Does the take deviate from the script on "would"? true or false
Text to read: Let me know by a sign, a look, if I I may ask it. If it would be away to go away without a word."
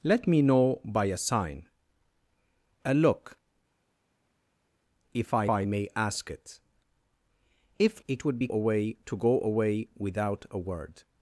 false